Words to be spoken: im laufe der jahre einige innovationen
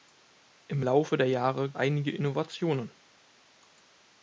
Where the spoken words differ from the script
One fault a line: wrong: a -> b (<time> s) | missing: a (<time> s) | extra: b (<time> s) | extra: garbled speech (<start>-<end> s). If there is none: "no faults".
no faults